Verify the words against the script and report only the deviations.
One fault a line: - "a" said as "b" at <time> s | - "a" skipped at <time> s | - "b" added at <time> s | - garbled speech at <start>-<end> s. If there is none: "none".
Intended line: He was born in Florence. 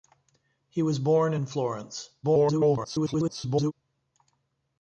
- garbled speech at 2.2-3.7 s